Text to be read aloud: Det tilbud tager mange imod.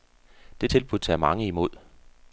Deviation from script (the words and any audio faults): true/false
false